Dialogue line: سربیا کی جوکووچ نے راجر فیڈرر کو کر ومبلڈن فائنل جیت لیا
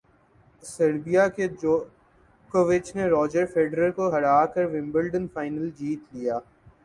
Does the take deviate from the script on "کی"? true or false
true